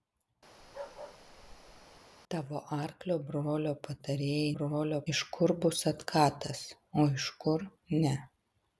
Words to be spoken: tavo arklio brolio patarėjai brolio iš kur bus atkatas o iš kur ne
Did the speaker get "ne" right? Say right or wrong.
right